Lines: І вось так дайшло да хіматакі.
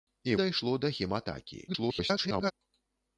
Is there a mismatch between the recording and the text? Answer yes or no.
yes